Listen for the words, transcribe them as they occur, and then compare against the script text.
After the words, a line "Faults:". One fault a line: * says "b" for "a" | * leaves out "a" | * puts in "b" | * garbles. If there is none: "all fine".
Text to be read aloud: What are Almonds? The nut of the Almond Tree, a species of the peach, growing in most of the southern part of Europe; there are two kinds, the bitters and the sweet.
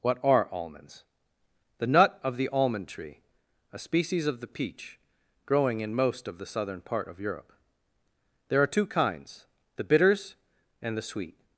What are Almonds? The nut of the Almond Tree, a species of the peach, growing in most of the southern part of Europe; there are two kinds, the bitters and the sweet.
Faults:
all fine